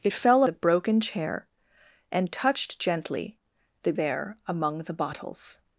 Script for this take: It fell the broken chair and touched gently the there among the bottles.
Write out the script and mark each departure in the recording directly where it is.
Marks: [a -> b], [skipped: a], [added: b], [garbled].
It fell the broken chair and touched gently the there among the bottles.